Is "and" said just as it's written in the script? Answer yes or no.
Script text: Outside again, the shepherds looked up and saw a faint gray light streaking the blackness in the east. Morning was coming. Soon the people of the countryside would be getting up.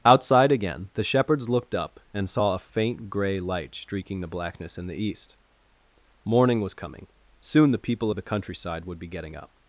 yes